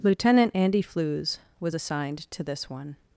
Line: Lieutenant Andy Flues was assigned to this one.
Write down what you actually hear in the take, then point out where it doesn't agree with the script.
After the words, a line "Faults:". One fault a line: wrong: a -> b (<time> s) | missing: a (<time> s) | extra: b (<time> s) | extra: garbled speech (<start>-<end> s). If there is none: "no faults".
Lieutenant Andy Flues was assigned to this one.
Faults:
no faults